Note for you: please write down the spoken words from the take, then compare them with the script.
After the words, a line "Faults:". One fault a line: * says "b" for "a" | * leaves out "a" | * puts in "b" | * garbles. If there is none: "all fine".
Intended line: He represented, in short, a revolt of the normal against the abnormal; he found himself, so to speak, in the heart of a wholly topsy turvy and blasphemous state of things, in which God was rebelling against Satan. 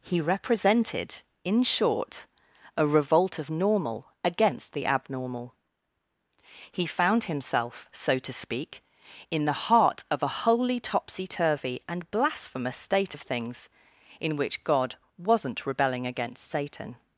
He represented, in short, a revolt of normal against the abnormal; he found himself, so to speak, in the heart of a wholly topsy turvy and blasphemous state of things, in which God wasn't rebelling against Satan.
Faults:
* leaves out "the"
* says "wasn't" for "was"